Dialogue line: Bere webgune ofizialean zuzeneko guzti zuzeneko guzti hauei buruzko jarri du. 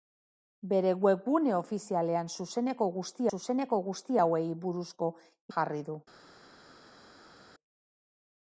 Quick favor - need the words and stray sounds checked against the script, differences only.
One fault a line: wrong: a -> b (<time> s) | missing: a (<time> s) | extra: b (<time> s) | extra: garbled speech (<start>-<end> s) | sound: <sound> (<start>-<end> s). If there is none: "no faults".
no faults